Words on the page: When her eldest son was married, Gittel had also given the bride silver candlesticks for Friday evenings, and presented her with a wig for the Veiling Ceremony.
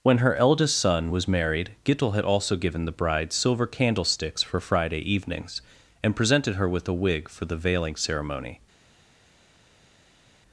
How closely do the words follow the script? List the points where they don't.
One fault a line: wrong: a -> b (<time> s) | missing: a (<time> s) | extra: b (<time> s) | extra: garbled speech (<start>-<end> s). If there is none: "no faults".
no faults